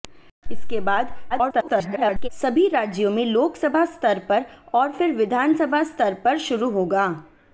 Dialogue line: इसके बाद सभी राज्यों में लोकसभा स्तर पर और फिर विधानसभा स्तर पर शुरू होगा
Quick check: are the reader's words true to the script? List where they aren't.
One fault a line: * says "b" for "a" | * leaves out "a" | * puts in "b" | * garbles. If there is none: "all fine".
* garbles